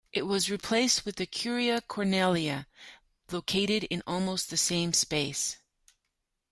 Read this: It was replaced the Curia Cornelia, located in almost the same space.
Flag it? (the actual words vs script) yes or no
yes